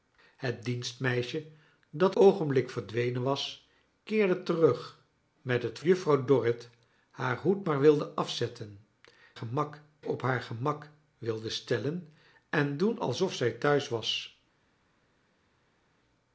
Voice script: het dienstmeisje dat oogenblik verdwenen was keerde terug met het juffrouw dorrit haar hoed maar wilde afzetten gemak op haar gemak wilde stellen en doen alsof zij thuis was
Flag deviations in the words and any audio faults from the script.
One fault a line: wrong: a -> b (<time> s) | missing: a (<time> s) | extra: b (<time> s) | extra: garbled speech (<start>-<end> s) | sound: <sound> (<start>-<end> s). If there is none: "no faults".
no faults